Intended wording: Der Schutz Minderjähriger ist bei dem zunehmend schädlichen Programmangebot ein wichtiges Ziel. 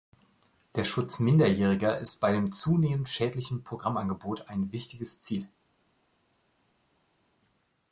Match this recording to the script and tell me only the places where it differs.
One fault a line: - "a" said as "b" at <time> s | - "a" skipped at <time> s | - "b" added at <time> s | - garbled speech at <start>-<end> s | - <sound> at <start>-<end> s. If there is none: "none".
none